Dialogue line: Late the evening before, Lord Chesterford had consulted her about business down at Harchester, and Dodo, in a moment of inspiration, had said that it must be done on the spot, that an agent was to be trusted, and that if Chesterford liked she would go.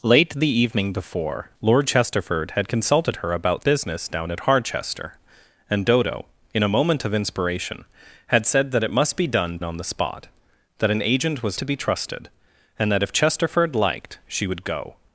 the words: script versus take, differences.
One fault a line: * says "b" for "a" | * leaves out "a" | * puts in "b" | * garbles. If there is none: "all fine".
all fine